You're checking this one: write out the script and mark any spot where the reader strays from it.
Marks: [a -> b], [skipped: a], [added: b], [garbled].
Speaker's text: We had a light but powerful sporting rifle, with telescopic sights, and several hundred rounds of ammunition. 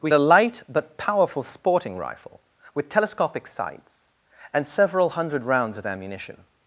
We [skipped: had] a light but powerful sporting rifle, with telescopic sights, and several hundred rounds of ammunition.